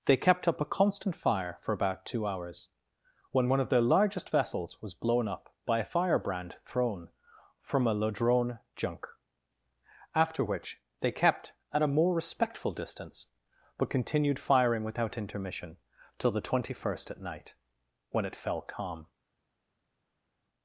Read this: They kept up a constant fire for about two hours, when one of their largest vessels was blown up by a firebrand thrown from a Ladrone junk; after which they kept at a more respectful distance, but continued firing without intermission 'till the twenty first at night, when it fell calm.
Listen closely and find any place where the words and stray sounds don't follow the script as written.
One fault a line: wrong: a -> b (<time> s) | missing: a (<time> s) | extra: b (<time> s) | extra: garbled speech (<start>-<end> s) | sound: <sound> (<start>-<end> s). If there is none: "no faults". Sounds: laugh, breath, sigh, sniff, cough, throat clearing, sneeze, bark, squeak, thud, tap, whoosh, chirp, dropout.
no faults